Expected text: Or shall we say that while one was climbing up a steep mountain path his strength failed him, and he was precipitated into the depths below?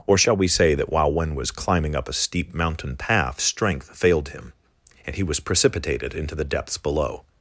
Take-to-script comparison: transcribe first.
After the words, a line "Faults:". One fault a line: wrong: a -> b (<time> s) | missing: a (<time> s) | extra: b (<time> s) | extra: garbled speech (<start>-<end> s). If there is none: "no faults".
Or shall we say that while one was climbing up a steep mountain path strength failed him, and he was precipitated into the depths below?
Faults:
missing: his (3.4 s)